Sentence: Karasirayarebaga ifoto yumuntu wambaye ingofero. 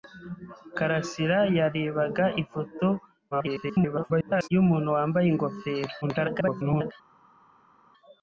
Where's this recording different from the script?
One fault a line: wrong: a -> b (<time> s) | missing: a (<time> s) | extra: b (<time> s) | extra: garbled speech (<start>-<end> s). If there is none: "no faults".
extra: garbled speech (3.3-4.5 s)
extra: garbled speech (6.0-6.9 s)